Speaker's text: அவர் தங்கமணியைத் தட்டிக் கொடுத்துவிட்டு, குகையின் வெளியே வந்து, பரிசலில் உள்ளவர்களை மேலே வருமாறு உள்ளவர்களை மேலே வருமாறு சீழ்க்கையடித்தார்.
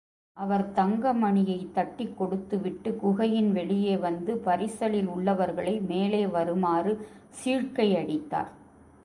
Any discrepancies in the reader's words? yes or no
yes